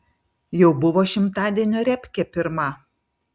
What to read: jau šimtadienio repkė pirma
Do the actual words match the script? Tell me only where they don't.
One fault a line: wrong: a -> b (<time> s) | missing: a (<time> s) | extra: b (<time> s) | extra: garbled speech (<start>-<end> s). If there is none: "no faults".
extra: buvo (0.8 s)